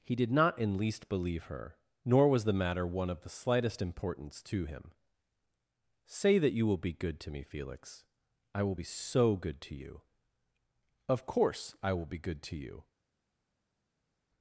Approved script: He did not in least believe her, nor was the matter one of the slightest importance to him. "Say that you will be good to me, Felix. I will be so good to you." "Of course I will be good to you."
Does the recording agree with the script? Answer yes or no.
yes